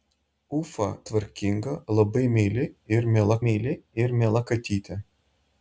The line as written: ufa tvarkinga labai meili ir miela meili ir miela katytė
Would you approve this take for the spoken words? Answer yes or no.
yes